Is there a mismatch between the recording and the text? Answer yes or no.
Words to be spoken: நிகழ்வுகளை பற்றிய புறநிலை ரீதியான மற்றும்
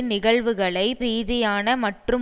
yes